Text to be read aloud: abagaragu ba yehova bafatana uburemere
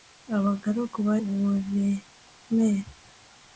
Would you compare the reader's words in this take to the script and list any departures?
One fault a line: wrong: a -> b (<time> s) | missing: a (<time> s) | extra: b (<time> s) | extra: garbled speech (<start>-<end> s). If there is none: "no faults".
missing: yehova bafatana (1.1 s)